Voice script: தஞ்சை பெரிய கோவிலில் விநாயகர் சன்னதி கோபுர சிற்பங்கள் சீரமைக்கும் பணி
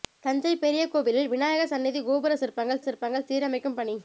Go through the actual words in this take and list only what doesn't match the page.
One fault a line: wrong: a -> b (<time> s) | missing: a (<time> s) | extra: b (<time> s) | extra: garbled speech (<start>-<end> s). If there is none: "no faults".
extra: சிற்பங்கள் (2.8 s)